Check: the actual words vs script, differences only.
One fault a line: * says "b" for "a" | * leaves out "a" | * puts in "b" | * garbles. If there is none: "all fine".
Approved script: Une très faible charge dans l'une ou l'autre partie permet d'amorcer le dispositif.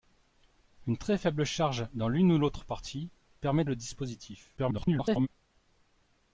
* leaves out "d'amorcer"
* garbles